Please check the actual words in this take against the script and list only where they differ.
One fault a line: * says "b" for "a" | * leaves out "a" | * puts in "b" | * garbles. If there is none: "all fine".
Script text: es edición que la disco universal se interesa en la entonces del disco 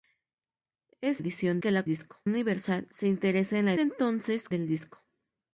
all fine